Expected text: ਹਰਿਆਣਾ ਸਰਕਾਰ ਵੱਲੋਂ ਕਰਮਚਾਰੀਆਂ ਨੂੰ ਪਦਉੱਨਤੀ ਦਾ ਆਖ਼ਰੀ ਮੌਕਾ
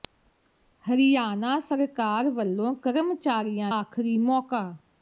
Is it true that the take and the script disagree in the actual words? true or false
true